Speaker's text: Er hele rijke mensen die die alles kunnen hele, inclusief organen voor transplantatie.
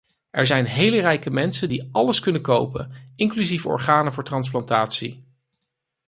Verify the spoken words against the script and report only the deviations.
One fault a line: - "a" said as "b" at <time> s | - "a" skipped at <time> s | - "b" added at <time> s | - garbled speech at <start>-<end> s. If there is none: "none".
- "zijn" added at 0.4 s
- "die" skipped at 1.9 s
- "hele" said as "kopen" at 2.4 s